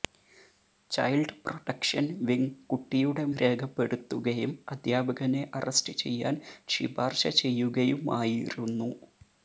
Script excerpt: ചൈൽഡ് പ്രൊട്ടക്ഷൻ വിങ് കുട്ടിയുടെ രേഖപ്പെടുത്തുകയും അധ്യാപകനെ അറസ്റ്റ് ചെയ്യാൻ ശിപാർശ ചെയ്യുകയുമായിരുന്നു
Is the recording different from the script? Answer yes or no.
no